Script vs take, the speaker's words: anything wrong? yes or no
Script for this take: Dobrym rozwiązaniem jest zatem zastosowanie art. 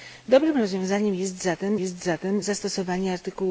yes